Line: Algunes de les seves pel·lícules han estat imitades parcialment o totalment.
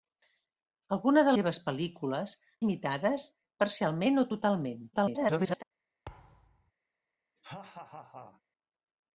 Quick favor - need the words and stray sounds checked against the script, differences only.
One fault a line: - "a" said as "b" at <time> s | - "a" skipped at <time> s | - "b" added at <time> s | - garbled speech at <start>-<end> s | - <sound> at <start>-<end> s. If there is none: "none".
- "les" skipped at 1.4 s
- "han estat" skipped at 2.4 s
- garbled speech at 4.9-5.6 s
- thud at 6.1-6.7 s
- laugh at 7.4-8.4 s